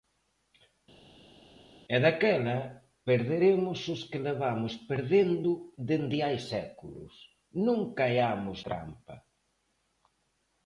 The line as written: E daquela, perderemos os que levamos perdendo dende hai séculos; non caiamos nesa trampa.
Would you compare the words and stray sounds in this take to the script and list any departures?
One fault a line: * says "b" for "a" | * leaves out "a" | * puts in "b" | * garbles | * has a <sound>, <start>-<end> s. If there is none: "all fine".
* leaves out "nesa"